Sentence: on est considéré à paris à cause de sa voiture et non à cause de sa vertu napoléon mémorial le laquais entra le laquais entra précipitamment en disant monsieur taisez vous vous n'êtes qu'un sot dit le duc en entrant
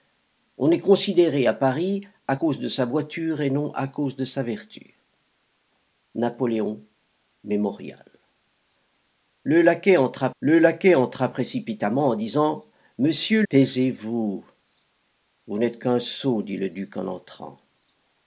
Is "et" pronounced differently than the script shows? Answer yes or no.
no